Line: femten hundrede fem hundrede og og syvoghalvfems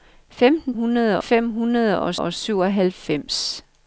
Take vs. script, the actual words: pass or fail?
pass